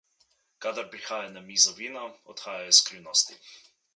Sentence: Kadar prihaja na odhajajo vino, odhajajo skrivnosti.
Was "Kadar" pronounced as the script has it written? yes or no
yes